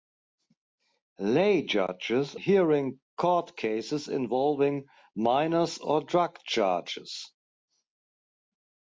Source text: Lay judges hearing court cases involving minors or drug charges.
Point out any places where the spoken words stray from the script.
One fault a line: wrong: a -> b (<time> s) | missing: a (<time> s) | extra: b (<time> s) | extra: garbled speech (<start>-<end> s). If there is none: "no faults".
no faults